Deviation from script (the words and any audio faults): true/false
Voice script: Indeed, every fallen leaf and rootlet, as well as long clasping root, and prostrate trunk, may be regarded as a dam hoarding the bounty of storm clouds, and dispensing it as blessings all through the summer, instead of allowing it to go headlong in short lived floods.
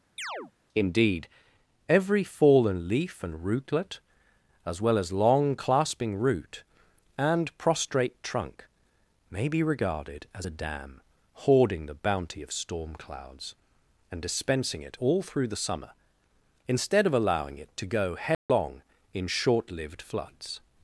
true